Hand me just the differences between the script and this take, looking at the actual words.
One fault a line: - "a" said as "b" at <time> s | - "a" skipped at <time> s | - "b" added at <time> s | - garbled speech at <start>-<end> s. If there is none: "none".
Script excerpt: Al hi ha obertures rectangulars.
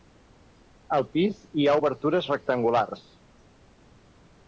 - "pis" added at 1.1 s